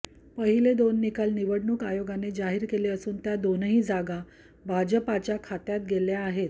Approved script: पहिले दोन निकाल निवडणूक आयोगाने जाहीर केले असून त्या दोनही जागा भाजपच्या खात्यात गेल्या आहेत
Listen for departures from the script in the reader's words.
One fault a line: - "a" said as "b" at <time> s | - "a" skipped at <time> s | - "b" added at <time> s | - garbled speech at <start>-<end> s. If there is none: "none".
none